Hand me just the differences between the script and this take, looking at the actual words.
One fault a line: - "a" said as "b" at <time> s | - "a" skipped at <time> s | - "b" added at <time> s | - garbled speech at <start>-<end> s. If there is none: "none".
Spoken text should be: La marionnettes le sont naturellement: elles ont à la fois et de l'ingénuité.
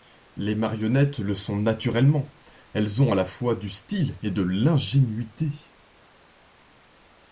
- "La" said as "Les" at 0.3 s
- "du style" added at 3.5 s